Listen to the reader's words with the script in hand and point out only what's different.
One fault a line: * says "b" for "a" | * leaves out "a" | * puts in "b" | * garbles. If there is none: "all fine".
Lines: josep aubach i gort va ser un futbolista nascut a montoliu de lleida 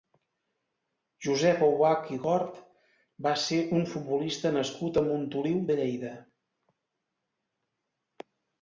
all fine